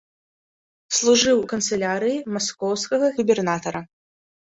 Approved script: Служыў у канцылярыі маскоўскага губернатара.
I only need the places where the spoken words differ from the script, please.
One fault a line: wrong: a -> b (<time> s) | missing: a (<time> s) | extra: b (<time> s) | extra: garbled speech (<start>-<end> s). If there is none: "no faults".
no faults